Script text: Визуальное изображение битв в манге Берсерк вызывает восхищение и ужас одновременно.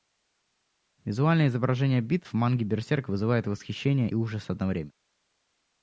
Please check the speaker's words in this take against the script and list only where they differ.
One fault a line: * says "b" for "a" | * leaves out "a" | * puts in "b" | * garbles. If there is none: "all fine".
* leaves out "и"